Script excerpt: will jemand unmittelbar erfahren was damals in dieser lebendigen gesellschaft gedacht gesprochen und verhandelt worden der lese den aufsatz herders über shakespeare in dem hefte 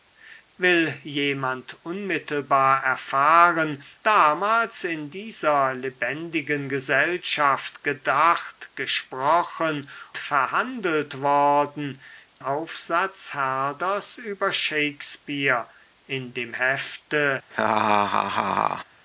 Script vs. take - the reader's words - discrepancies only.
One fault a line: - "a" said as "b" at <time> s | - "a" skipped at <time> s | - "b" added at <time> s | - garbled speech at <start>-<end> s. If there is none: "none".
- "was" skipped at 3.8 s
- "und" skipped at 9.9 s
- "der lese den" skipped at 12.0 s